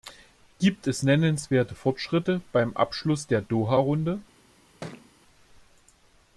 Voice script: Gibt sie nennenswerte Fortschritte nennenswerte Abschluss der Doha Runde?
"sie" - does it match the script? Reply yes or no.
no